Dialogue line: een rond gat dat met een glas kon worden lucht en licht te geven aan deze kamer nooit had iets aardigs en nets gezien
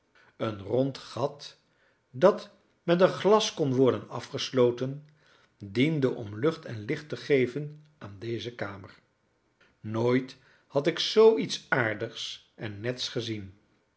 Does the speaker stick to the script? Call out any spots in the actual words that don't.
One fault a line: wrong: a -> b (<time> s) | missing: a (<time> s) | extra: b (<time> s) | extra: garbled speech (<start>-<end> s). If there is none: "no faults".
extra: afgesloten diende om (4.1 s)
extra: ik zoo (10.9 s)